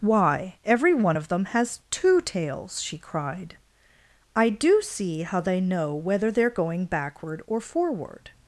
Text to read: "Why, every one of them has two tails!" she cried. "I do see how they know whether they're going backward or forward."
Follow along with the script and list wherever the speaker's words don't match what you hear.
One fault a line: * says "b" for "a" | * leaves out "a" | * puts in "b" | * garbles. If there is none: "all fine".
all fine